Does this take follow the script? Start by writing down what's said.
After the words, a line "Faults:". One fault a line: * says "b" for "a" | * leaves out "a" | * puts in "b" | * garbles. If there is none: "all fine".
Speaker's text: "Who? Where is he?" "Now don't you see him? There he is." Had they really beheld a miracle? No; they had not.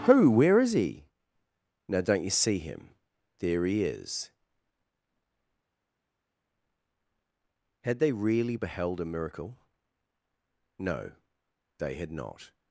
"Who? Where is he?" "Now don't you see him? There he is." Had they really beheld a miracle? No; they had not.
Faults:
all fine